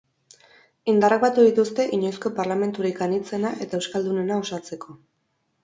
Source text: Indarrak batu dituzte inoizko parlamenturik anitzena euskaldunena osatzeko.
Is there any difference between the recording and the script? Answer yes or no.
yes